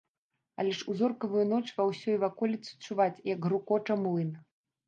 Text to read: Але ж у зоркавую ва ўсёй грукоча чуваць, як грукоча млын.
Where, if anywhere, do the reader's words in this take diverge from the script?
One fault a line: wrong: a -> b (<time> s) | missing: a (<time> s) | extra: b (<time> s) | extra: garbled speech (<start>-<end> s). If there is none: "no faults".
extra: ноч (1.5 s)
wrong: грукоча -> ваколіцы (2.2 s)